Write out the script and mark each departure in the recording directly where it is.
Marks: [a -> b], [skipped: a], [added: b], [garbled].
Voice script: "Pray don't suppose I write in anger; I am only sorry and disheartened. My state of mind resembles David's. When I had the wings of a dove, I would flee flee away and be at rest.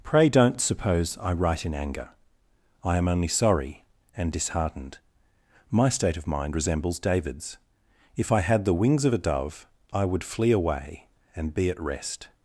"Pray don't suppose I write in anger; I am only sorry and disheartened. My state of mind resembles David's. [When -> If] I had the wings of a dove, I would flee [skipped: flee] away and be at rest.